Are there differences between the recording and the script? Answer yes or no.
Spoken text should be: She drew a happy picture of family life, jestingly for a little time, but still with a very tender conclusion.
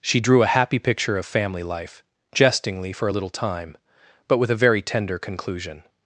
yes